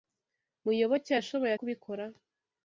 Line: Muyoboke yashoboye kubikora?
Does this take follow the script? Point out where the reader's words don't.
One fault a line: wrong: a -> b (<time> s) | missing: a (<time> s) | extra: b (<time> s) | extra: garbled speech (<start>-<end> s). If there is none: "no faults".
no faults